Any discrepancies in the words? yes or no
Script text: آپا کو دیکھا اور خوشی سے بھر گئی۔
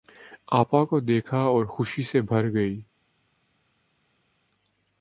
no